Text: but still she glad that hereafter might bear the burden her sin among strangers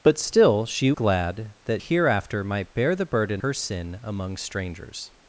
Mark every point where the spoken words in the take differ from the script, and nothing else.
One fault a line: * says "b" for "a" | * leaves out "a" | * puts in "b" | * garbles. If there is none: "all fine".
all fine